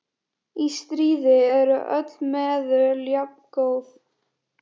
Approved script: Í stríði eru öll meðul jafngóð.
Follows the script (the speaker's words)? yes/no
yes